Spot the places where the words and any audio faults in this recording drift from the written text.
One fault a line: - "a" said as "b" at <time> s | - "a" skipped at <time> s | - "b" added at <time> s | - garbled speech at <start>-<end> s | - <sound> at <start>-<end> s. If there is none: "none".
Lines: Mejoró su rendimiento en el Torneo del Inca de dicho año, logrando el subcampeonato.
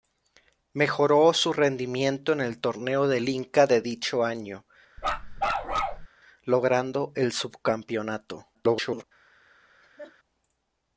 - bark at 5.0-6.1 s
- garbled speech at 8.5-9.0 s
- laugh at 9.8-10.1 s